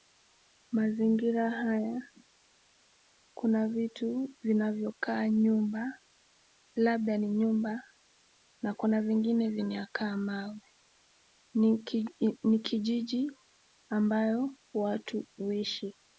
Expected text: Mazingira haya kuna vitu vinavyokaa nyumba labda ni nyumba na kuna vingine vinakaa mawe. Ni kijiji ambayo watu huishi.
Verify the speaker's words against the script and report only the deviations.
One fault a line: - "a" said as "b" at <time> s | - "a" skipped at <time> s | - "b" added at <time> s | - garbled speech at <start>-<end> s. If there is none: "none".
none